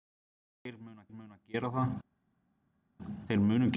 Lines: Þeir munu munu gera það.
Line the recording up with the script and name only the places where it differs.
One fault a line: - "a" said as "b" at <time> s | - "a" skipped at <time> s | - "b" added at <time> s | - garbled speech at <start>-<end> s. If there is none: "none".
none